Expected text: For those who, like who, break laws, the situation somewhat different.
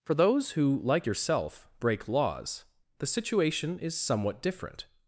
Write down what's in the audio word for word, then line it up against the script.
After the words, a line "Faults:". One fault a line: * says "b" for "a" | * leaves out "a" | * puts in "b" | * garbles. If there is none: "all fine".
For those who, like yourself, break laws, the situation is somewhat different.
Faults:
* says "yourself" for "who"
* puts in "is"